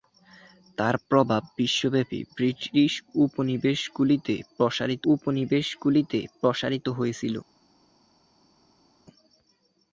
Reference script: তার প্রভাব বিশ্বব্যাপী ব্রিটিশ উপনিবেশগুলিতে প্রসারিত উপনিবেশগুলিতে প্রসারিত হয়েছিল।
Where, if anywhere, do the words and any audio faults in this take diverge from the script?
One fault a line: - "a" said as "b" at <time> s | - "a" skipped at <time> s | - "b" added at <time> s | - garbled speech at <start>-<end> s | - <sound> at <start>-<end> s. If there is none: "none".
none